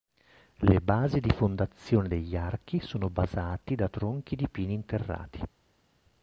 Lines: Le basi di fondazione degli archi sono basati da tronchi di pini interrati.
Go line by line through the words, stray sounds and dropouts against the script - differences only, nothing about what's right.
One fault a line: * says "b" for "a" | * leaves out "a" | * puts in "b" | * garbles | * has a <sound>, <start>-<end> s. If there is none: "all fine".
all fine